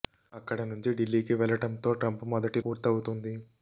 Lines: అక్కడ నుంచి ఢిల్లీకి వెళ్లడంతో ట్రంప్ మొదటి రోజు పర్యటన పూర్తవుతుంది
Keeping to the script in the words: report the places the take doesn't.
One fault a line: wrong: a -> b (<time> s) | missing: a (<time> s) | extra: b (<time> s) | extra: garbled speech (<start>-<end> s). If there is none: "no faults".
missing: రోజు పర్యటన (2.6 s)